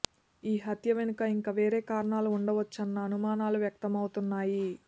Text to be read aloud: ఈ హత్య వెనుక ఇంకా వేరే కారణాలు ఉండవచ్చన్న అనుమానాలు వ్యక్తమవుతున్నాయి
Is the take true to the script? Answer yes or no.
yes